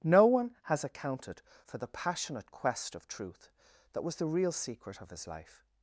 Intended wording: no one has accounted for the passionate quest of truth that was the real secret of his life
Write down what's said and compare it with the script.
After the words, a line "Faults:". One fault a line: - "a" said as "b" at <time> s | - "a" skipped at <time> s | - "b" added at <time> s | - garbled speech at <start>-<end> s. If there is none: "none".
no one has accounted for the passionate quest of truth that was the real secret of his life
Faults:
none